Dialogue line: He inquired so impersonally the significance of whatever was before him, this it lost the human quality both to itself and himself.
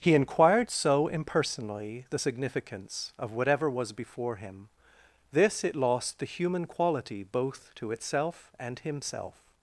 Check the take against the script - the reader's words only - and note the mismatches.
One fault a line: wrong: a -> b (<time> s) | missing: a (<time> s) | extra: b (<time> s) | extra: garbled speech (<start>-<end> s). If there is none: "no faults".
no faults